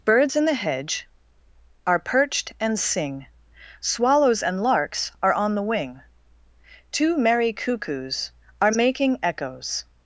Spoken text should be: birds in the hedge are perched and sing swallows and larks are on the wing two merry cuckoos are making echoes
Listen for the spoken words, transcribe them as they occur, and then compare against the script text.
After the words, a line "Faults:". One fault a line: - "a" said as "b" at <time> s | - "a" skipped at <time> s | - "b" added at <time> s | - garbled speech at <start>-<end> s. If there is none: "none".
birds in the hedge are perched and sing swallows and larks are on the wing two merry cuckoos are making echoes
Faults:
none